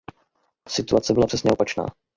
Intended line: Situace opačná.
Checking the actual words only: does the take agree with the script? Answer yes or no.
no